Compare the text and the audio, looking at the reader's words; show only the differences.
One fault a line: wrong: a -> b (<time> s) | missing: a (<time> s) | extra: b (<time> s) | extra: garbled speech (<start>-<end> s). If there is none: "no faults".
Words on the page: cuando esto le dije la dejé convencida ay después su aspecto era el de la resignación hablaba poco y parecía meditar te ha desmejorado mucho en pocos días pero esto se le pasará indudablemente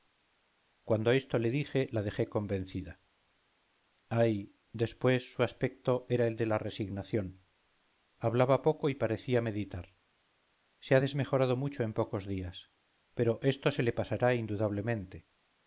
wrong: te -> se (10.8 s)